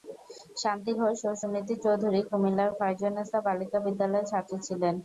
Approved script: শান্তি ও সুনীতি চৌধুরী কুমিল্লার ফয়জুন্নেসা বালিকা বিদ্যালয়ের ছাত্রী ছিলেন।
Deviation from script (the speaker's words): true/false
true